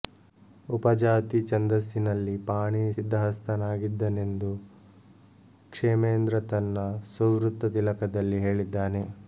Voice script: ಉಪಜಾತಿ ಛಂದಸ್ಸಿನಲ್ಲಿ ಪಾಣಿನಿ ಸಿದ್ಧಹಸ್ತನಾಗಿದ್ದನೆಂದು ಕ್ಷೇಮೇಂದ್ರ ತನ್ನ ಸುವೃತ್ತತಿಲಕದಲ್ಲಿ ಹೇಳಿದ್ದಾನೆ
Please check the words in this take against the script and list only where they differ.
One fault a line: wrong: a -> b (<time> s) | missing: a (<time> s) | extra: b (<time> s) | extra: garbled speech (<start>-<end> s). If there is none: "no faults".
no faults